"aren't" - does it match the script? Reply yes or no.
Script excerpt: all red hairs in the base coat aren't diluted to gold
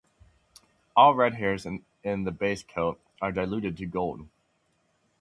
no